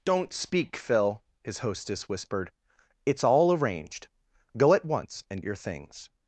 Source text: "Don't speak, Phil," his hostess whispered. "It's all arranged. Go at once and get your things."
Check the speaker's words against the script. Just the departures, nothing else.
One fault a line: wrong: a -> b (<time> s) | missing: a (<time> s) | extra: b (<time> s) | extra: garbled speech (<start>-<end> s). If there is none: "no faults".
missing: get (5.4 s)